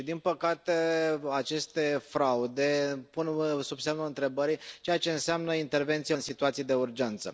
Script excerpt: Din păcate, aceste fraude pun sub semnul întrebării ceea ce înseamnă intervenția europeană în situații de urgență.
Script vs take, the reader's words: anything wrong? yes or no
yes